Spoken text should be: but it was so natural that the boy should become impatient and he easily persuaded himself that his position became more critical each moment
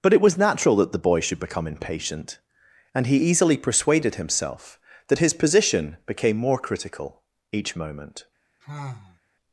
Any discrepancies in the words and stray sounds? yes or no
yes